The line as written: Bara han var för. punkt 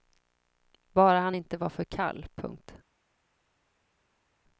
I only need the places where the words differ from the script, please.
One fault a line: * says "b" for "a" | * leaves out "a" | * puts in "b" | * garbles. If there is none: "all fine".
* puts in "inte"
* puts in "kall"